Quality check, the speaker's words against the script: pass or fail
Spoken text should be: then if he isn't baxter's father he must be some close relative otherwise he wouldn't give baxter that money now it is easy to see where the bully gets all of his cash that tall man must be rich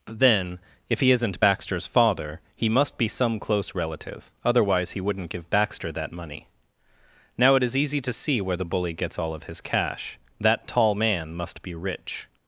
pass